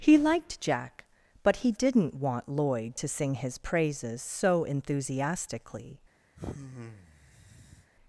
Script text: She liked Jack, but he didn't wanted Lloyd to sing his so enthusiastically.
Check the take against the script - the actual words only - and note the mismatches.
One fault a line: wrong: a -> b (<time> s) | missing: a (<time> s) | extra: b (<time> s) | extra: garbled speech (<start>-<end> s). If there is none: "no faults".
wrong: She -> He (0.0 s)
wrong: wanted -> want (2.1 s)
extra: praises (3.6 s)